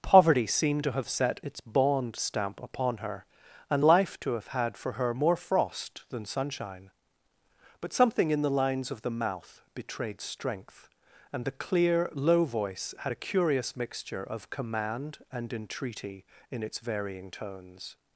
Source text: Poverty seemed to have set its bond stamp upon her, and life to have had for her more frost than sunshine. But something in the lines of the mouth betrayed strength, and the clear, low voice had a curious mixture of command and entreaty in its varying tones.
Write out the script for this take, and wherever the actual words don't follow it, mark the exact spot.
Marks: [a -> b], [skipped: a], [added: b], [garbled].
Poverty seemed to have set its bond stamp upon her, and life to have had for her more frost than sunshine. But something in the lines of the mouth betrayed strength, and the clear, low voice had a curious mixture of command and entreaty in its varying tones.